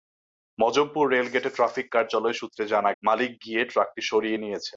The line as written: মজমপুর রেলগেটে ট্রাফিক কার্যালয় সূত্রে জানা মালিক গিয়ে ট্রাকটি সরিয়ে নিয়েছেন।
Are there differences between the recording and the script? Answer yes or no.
no